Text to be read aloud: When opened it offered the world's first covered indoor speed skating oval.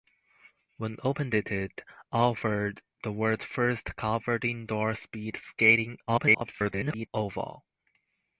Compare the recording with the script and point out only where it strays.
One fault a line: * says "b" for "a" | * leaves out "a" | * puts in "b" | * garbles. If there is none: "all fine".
* garbles